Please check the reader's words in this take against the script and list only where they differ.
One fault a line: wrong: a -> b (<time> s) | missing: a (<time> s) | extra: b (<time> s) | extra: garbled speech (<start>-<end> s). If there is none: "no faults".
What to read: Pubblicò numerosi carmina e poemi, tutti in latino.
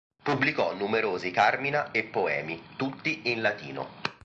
no faults